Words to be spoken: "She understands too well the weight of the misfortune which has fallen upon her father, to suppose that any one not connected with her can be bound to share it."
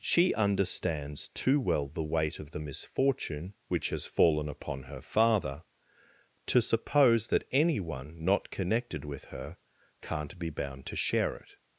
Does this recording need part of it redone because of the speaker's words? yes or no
yes